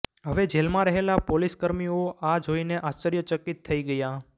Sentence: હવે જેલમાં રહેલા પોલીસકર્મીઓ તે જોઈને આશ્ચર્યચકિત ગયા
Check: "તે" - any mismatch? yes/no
yes